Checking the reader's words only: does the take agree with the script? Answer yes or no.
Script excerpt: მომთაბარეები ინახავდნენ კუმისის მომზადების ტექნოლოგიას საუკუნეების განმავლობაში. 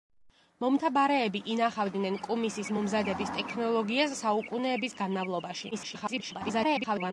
no